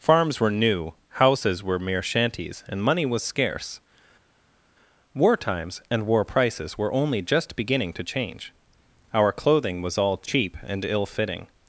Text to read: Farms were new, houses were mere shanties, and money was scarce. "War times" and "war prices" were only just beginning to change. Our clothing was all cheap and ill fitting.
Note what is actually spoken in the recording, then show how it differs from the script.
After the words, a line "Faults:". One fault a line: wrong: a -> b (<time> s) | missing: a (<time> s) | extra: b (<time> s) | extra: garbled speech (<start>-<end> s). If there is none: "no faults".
Farms were new, houses were mere shanties, and money was scarce. "War times" and "war prices" were only just beginning to change. Our clothing was all cheap and ill fitting.
Faults:
no faults